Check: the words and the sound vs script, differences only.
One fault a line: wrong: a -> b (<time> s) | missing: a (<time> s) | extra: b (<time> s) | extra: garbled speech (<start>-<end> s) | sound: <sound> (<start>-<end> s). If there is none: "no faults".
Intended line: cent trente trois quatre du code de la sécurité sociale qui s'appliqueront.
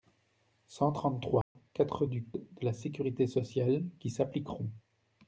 sound: dropout (1.4-1.6 s)
missing: code (2.2 s)